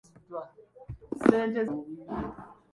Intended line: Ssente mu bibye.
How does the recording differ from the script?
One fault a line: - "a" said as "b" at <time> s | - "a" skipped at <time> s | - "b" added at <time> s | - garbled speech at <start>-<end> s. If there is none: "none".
none